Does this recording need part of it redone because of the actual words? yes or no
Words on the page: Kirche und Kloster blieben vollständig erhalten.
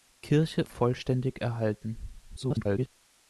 yes